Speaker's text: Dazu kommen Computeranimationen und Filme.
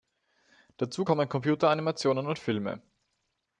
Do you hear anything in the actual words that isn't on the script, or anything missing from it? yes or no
no